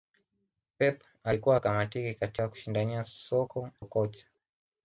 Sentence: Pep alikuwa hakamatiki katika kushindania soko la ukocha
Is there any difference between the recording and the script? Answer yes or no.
yes